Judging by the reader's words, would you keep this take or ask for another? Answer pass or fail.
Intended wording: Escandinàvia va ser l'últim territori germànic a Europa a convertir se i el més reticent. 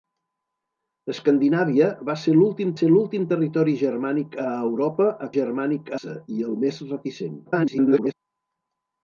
fail